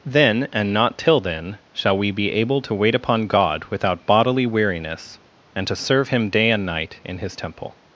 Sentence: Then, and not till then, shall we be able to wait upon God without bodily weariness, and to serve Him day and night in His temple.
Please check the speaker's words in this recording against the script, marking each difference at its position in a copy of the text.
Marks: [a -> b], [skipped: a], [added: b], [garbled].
Then, and not till then, shall we be able to wait upon God without bodily weariness, and to serve Him day and night in His temple.